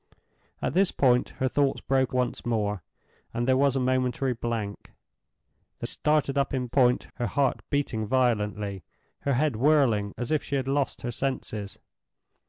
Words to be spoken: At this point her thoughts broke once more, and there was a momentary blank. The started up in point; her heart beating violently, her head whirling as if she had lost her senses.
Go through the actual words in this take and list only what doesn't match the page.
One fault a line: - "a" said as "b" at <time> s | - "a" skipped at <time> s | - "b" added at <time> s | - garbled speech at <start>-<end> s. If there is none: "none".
none